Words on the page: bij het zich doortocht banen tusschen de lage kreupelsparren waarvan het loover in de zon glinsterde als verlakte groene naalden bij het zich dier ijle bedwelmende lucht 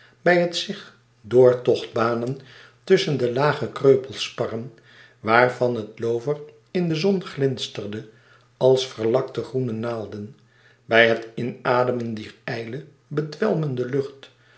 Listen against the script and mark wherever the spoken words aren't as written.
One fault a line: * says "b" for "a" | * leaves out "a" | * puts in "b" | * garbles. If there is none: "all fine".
* says "inademen" for "zich"